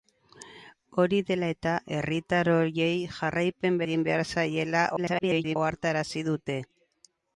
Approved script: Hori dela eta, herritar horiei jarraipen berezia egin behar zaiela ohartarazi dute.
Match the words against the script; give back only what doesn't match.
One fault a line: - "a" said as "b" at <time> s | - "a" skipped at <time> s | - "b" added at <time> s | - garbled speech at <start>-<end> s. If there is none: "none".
- "berezia" skipped at 3.8 s
- garbled speech at 5.0-5.6 s